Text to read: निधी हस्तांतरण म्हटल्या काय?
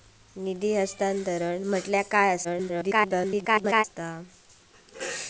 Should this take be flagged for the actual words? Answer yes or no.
yes